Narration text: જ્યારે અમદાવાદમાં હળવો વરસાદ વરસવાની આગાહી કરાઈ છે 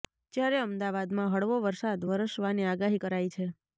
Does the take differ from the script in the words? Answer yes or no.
no